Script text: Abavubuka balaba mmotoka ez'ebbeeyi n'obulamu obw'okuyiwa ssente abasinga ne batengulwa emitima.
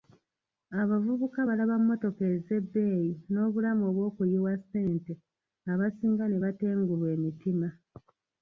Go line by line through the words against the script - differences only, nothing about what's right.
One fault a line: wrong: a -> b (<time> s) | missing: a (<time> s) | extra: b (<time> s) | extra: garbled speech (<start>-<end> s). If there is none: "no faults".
no faults